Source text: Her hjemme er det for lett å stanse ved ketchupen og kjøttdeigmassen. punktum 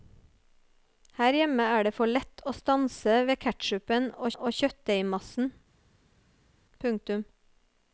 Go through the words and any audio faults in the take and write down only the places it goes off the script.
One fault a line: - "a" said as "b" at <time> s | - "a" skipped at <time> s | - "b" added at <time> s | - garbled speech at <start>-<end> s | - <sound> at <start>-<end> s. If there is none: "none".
- "og" added at 4.4 s